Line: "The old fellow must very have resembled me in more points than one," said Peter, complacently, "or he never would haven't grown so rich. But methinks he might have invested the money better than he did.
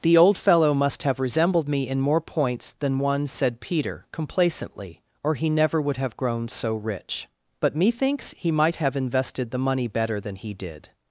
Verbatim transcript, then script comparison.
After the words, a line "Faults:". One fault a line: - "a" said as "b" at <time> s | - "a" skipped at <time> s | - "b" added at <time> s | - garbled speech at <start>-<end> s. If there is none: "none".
"The old fellow must have resembled me in more points than one," said Peter, complacently, "or he never would have grown so rich. But methinks he might have invested the money better than he did.
Faults:
- "very" skipped at 1.0 s
- "haven't" said as "have" at 6.0 s